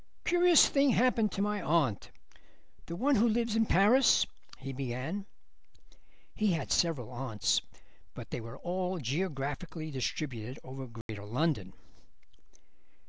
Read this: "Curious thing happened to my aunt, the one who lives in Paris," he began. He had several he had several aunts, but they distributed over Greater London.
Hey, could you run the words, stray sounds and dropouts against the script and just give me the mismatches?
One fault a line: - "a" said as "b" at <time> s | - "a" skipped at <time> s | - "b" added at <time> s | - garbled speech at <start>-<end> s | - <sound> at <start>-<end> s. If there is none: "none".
- "he had several aunts but they" said as "aunts but they were all geographically" at 7.1 s
- dropout at 11.0-11.1 s